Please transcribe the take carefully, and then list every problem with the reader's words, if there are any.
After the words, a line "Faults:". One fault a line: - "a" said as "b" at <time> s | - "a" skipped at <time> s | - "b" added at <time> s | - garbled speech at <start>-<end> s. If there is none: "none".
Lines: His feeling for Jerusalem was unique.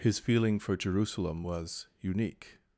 His feeling for Jerusalem was unique.
Faults:
none